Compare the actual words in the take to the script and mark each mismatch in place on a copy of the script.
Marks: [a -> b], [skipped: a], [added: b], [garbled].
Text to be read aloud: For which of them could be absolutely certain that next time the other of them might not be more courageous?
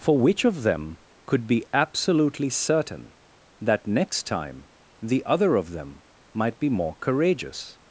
For which of them could be absolutely certain that next time the other of them might [skipped: not] be more courageous?